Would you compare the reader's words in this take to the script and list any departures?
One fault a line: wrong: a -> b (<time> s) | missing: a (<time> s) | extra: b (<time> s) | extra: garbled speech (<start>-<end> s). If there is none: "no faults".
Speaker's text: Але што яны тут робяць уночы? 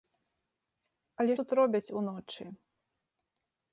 missing: што яны (1.3 s)